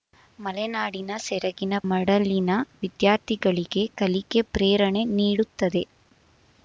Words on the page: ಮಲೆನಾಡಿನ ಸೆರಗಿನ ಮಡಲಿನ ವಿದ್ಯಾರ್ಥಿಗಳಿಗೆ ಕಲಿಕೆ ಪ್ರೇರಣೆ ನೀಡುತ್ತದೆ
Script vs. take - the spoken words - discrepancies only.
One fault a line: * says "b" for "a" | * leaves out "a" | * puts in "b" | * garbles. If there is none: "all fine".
all fine